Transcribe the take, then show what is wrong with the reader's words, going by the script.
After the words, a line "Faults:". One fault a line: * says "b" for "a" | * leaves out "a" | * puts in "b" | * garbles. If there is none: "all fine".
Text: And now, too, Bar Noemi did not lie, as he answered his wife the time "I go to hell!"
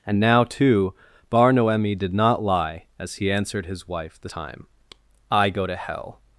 And now, too, Bar Noemi did not lie, as he answered his wife the time "I go to hell!"
Faults:
all fine